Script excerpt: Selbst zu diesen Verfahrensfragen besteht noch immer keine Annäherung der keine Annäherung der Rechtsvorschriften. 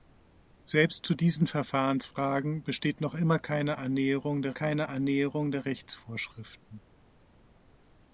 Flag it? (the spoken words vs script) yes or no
no